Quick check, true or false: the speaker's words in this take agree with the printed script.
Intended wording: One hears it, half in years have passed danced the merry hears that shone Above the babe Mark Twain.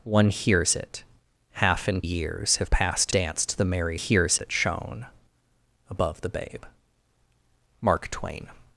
true